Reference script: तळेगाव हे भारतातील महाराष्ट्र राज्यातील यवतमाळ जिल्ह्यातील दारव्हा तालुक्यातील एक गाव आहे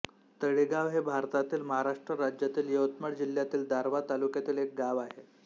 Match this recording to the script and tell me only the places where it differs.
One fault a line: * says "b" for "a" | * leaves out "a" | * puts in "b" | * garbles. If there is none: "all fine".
all fine